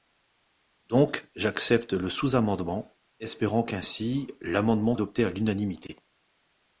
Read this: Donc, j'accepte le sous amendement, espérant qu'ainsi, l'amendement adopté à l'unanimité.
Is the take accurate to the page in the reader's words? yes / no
yes